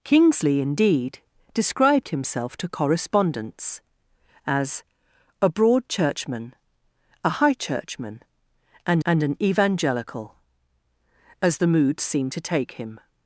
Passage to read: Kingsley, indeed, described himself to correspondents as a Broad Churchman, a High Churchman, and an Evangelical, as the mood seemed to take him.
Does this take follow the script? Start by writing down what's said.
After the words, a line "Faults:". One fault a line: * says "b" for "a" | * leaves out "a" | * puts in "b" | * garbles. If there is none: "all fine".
Kingsley, indeed, described himself to correspondents as a Broad Churchman, a High Churchman, and and an Evangelical, as the mood seemed to take him.
Faults:
* puts in "and"